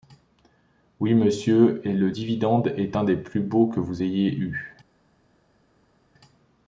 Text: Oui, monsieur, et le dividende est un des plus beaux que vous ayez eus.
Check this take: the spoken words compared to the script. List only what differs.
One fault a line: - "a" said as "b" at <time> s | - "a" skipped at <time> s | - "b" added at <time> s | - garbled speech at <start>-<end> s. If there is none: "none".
none